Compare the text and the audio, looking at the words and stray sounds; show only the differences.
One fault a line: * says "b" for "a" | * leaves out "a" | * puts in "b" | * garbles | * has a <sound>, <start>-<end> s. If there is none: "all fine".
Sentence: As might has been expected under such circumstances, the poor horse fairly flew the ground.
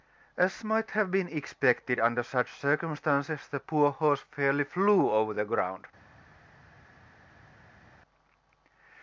* says "have" for "has"
* puts in "over"